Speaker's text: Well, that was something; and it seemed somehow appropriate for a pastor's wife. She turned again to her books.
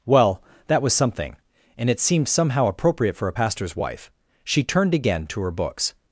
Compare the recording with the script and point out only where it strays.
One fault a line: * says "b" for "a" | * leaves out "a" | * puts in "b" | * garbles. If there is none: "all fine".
all fine